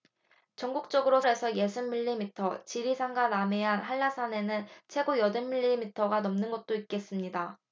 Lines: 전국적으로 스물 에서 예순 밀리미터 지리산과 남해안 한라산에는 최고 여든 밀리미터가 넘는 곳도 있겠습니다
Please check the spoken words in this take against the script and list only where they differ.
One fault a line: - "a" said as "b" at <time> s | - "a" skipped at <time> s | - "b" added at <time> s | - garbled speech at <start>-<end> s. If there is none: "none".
- "스물" skipped at 1.2 s